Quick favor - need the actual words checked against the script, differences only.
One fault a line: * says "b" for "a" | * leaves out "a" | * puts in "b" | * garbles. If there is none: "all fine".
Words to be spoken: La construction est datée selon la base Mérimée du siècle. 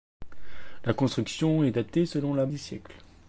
* leaves out "base Mérimée"